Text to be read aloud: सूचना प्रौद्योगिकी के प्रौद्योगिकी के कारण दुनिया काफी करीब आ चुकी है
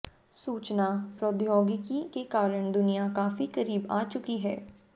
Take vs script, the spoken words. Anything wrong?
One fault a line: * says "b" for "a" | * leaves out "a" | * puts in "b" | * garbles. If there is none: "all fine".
* leaves out "प्रौद्योगिकी के"